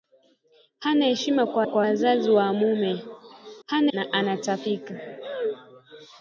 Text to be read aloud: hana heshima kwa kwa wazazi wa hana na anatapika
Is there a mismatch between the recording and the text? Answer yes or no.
no